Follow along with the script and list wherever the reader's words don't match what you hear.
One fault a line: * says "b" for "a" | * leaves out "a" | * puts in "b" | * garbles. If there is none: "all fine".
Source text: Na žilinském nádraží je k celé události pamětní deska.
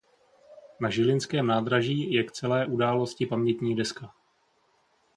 all fine